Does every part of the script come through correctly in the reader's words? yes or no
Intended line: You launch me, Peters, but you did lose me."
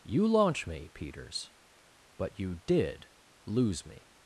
yes